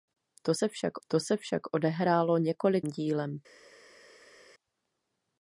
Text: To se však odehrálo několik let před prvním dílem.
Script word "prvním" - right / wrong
wrong